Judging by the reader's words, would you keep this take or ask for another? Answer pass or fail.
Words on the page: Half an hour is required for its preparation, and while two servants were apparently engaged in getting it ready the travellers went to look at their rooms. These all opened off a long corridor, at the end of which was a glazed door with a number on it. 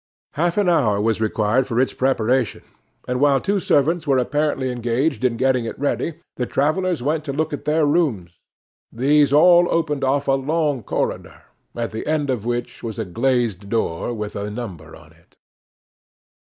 fail